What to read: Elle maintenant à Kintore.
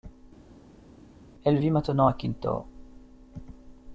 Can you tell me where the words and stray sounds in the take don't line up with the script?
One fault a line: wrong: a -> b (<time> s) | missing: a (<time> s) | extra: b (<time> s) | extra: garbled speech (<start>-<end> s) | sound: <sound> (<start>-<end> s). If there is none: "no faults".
extra: vit (1.6 s)